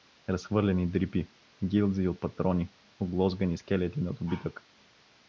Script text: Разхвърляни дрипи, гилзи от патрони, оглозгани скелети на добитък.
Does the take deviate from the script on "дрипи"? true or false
false